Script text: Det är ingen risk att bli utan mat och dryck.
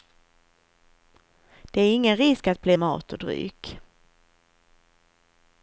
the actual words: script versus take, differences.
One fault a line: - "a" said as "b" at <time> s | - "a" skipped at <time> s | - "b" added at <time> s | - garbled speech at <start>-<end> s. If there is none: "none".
- "utan" skipped at 2.8 s